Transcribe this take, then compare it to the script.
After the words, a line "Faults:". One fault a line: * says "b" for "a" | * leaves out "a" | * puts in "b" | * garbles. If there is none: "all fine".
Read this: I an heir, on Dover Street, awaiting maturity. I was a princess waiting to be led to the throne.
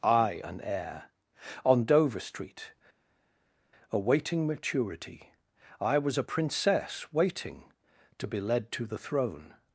I an heir, on Dover Street, awaiting maturity. I was a princess waiting to be led to the throne.
Faults:
all fine